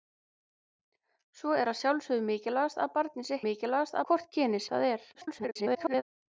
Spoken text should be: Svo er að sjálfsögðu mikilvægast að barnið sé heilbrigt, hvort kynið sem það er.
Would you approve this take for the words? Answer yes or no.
no